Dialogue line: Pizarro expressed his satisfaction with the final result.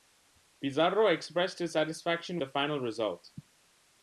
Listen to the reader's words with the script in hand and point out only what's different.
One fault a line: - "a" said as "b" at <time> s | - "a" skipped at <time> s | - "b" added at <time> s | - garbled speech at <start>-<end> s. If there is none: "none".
- "with" skipped at 2.4 s